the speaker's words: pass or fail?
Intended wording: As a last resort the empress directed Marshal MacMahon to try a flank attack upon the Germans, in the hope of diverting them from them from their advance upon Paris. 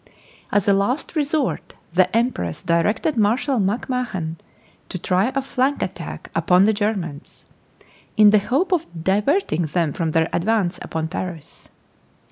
fail